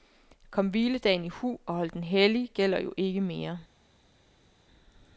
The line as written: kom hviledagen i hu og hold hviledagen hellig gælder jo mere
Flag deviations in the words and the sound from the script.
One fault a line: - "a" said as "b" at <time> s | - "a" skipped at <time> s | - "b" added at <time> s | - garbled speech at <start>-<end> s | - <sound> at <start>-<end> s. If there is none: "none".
- "hviledagen" said as "den" at 1.9 s
- "ikke" added at 3.0 s